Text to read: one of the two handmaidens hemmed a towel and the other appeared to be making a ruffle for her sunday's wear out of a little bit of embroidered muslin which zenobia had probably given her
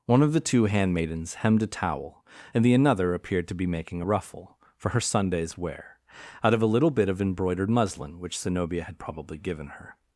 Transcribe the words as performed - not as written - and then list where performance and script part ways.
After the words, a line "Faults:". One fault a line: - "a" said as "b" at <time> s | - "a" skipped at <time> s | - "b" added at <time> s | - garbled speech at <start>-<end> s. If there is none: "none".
one of the two handmaidens hemmed a towel and the another appeared to be making a ruffle for her sunday's wear out of a little bit of embroidered muslin which zenobia had probably given her
Faults:
- "other" said as "another" at 2.7 s